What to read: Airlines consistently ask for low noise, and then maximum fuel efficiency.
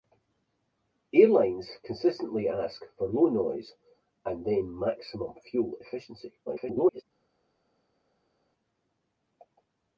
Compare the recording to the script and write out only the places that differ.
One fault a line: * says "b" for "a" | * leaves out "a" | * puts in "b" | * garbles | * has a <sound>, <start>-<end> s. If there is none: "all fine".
* garbles